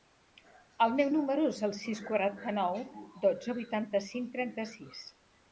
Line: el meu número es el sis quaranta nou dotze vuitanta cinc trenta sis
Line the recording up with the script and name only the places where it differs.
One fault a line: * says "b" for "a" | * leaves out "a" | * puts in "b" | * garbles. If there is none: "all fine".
all fine